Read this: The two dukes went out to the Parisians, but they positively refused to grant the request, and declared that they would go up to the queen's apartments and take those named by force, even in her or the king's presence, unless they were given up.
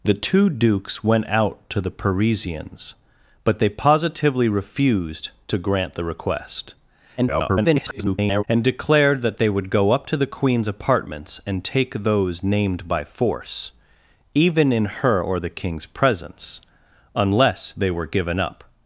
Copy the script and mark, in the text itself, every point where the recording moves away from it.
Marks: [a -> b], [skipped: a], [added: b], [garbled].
The two dukes went out to the Parisians, but they positively refused to grant the request, [garbled] and declared that they would go up to the queen's apartments and take those named by force, even in her or the king's presence, unless they were given up.